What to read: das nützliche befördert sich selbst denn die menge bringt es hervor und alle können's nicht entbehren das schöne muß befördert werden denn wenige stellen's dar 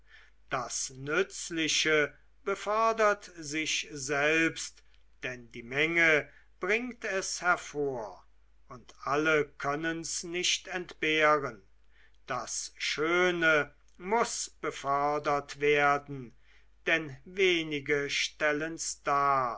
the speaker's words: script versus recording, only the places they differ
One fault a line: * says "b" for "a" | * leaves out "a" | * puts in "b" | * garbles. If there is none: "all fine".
all fine